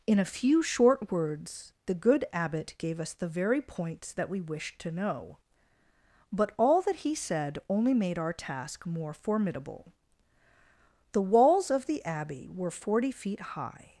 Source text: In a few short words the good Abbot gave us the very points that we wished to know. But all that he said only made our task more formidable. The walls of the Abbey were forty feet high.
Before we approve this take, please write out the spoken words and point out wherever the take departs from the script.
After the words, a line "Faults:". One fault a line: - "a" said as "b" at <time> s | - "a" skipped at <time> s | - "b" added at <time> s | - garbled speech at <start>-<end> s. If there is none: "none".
In a few short words the good Abbot gave us the very points that we wished to know. But all that he said only made our task more formidable. The walls of the Abbey were forty feet high.
Faults:
none